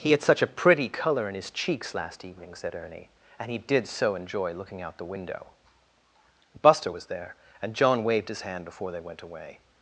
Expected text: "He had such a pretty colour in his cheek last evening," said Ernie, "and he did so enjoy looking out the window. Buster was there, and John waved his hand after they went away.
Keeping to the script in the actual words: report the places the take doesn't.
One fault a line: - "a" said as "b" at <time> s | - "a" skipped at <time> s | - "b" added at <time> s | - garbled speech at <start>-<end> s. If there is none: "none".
- "cheek" said as "cheeks" at 1.5 s
- "after" said as "before" at 8.6 s